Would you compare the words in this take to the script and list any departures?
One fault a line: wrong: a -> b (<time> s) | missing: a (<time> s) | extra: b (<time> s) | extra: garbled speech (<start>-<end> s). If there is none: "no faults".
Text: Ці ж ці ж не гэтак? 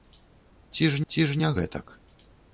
no faults